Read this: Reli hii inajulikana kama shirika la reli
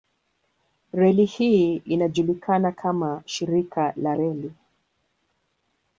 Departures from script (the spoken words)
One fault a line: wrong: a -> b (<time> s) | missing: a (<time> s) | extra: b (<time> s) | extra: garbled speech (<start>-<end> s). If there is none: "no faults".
no faults